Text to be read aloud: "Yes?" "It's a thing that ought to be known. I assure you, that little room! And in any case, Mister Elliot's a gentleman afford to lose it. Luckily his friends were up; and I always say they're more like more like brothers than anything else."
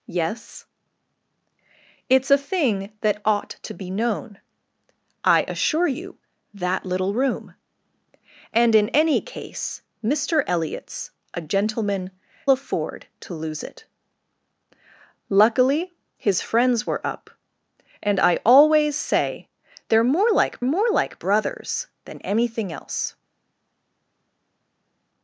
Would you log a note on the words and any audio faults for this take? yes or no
no